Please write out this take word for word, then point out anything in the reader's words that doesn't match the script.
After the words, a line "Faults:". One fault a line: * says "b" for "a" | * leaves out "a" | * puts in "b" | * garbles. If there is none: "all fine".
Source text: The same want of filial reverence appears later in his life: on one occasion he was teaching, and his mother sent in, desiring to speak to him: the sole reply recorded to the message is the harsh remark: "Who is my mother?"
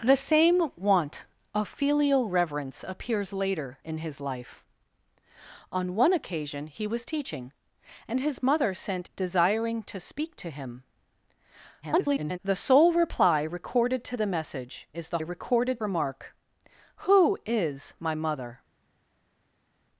The same want of filial reverence appears later in his life: on one occasion he was teaching, and his mother sent desiring to speak to him: [garbled] the sole reply recorded to the message is the recorded remark: "Who is my mother?"
Faults:
* leaves out "in"
* garbles
* says "recorded" for "harsh"